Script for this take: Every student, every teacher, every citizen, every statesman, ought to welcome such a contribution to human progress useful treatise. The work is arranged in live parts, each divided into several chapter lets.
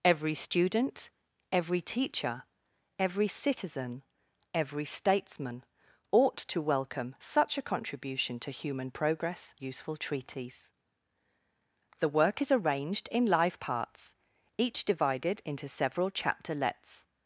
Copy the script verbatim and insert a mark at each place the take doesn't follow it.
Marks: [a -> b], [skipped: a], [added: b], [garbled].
Every student, every teacher, every citizen, every statesman, ought to welcome such a contribution to human progress useful treatise. The work is arranged in live parts, each divided into several chapter lets.